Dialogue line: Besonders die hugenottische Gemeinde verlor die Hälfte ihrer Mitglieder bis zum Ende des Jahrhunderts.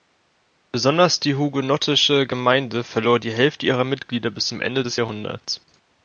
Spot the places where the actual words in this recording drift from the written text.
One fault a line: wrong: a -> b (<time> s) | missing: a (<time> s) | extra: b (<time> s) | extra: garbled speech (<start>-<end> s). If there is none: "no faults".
no faults